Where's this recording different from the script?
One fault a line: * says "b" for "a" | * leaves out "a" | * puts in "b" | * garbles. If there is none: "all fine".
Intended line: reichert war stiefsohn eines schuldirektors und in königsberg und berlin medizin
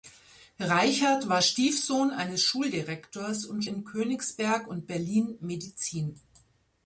all fine